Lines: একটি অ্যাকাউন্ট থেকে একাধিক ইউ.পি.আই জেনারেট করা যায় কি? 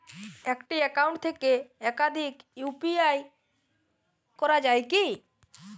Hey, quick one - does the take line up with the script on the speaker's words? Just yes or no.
no